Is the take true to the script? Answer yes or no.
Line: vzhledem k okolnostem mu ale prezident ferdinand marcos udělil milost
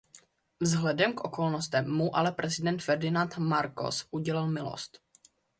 yes